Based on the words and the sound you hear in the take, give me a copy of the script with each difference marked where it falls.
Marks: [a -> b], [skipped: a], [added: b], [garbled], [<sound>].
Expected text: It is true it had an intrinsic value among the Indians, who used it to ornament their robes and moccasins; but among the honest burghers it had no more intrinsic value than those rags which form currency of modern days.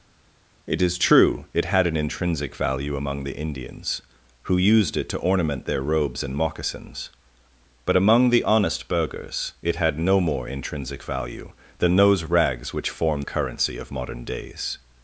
It is true it had an intrinsic value among the Indians, who used it to ornament their robes and moccasins; but among the honest burghers it had no more intrinsic value than those rags which form currency of modern days.